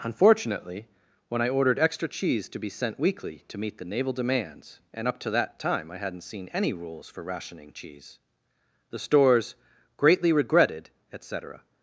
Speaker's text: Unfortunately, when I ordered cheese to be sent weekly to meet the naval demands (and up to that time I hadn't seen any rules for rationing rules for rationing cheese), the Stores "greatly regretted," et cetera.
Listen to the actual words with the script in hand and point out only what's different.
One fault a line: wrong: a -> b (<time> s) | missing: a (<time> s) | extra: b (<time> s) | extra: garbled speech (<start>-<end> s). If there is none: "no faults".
extra: extra (1.8 s)
missing: rules for rationing (7.7 s)